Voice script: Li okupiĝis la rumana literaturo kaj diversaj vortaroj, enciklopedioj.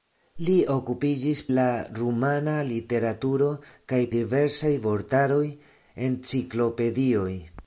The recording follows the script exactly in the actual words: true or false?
true